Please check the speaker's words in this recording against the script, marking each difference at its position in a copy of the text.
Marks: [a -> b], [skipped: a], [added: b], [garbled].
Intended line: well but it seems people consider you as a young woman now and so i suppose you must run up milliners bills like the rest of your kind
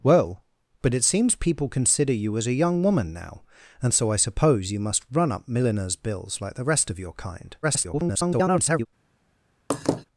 well but it seems people consider you as a young woman now and so i suppose you must run up milliners bills like the rest of your kind [garbled]